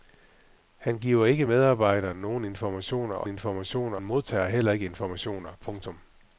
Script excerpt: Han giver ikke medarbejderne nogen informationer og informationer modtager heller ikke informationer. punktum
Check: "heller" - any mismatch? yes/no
no